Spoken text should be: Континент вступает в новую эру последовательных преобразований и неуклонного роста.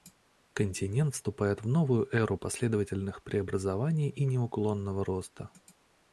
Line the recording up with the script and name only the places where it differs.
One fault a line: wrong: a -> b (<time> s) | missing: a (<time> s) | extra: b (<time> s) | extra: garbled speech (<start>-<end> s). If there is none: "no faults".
no faults